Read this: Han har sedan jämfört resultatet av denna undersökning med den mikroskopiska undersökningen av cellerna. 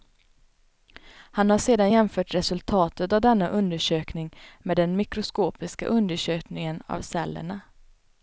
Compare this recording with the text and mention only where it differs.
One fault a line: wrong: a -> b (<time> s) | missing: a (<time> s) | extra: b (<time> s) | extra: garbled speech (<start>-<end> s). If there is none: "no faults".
no faults